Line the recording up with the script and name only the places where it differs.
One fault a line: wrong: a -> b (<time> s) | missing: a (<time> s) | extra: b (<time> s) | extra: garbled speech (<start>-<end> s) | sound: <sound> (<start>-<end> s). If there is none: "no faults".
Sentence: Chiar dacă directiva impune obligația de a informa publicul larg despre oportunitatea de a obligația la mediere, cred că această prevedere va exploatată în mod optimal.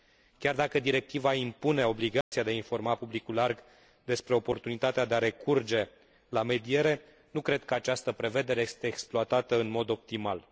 sound: dropout (2.2-2.3 s)
wrong: obligația -> recurge (5.2 s)
extra: nu (7.3 s)
wrong: va -> este (8.6 s)